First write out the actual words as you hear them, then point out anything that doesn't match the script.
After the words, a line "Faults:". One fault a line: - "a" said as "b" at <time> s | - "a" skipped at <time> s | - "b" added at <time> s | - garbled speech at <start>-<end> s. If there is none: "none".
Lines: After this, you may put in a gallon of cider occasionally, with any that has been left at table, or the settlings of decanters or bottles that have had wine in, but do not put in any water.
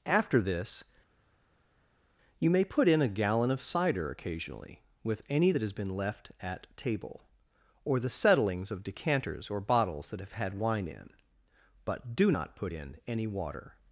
After this, you may put in a gallon of cider occasionally, with any that has been left at table, or the settlings of decanters or bottles that have had wine in, but do not put in any water.
Faults:
none